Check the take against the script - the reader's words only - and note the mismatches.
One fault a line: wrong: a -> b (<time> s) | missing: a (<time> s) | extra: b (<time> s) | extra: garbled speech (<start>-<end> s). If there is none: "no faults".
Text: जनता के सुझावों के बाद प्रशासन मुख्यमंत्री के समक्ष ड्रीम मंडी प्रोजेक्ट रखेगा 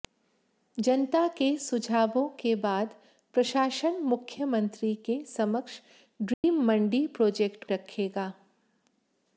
no faults